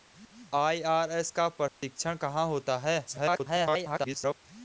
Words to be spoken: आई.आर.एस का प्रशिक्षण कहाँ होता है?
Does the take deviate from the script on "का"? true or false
false